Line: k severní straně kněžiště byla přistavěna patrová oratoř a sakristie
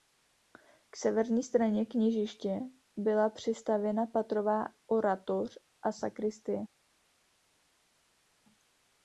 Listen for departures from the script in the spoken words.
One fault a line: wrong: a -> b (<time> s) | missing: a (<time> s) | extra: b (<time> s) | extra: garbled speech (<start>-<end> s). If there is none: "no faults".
no faults